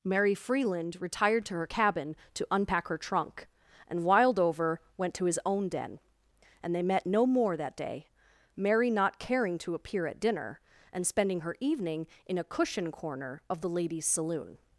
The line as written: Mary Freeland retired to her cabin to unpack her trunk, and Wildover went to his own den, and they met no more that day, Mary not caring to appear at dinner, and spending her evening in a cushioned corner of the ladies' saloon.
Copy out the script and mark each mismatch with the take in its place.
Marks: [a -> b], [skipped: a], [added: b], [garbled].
Mary Freeland retired to her cabin to unpack her trunk, and Wildover went to his own den, and they met no more that day, Mary not caring to appear at dinner, and spending her evening in a [cushioned -> cushion] corner of the ladies' saloon.